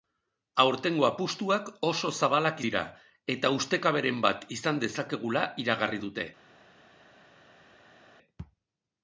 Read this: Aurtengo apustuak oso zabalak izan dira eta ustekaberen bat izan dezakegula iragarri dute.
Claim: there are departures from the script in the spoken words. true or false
true